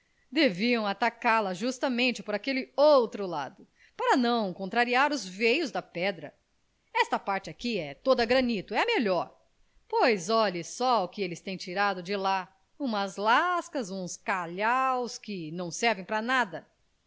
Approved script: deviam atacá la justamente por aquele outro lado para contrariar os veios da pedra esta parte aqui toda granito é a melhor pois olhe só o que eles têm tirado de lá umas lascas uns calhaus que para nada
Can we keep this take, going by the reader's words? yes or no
no